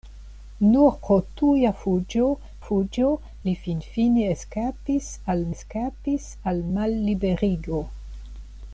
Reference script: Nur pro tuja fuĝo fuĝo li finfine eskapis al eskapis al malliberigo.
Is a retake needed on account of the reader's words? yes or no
no